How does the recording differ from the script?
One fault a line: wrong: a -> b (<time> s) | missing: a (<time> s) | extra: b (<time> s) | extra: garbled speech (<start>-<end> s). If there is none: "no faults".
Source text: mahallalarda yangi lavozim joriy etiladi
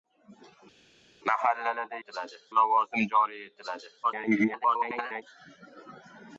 wrong: yangi -> etiladi (2.0 s)
extra: garbled speech (4.0-5.2 s)